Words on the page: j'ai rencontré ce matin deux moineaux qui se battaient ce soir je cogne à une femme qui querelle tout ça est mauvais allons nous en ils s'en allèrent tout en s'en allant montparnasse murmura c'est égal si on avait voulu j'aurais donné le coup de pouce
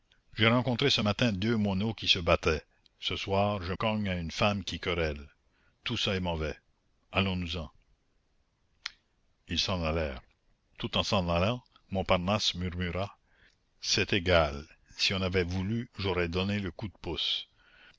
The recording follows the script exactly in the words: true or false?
true